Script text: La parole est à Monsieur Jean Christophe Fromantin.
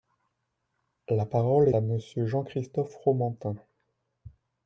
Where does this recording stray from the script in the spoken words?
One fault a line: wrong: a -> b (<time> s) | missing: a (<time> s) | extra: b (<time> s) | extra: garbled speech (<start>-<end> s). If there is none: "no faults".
missing: est (1.7 s)